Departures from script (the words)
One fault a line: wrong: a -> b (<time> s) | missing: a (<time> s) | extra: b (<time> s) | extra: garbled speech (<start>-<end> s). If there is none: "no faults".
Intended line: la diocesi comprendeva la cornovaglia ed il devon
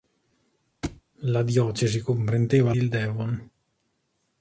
missing: la cornovaglia ed (2.7 s)